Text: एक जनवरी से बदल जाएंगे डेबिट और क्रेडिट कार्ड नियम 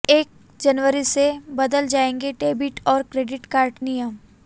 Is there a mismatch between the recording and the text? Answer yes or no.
no